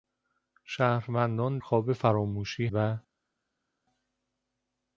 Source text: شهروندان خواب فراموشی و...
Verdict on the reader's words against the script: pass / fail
pass